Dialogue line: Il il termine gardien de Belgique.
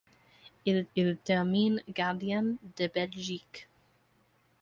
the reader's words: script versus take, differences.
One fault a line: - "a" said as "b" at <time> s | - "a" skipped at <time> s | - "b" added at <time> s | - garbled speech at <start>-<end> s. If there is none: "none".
none